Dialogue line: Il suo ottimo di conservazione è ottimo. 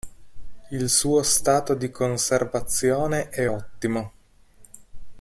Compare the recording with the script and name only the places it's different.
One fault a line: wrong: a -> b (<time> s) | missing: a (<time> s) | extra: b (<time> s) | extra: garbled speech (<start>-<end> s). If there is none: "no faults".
wrong: ottimo -> stato (1.2 s)